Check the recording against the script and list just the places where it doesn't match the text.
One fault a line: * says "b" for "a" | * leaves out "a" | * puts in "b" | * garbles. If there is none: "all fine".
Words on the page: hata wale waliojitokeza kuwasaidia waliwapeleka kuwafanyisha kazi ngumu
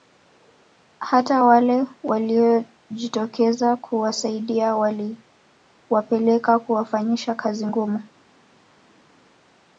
all fine